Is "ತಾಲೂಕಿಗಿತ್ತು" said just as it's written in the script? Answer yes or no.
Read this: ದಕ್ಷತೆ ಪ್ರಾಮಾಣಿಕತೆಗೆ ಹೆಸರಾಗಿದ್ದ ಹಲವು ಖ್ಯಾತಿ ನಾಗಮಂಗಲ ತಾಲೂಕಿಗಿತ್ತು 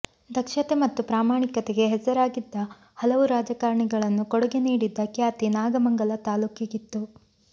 yes